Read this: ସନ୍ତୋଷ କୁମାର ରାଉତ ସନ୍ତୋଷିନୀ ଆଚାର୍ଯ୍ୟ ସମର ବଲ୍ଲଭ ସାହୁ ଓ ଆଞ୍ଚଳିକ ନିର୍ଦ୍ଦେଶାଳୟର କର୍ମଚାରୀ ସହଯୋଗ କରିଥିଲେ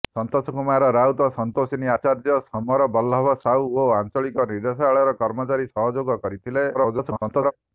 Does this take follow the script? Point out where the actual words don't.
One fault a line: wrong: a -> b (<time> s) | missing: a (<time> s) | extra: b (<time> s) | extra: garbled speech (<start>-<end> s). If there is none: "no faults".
extra: garbled speech (6.7-7.5 s)